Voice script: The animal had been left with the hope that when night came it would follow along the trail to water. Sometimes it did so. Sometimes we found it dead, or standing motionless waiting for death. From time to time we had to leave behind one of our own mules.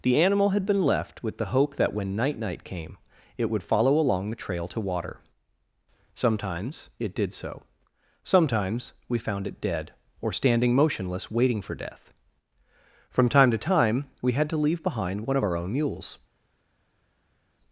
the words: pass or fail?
fail